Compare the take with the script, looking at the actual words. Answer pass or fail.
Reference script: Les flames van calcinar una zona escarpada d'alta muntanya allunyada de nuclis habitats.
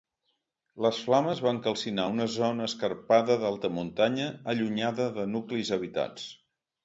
pass